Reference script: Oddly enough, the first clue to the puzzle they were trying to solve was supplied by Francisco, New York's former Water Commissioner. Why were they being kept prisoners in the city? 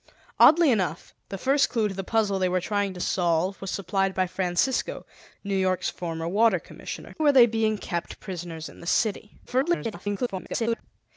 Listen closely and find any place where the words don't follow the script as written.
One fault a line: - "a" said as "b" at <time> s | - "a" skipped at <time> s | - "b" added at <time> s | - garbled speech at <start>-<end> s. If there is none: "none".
- "Why" skipped at 7.1 s
- garbled speech at 9.5-10.8 s